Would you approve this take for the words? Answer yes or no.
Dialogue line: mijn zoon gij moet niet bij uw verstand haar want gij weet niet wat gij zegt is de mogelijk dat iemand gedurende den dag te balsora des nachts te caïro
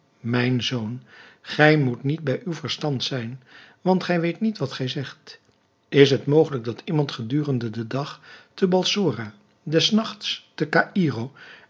no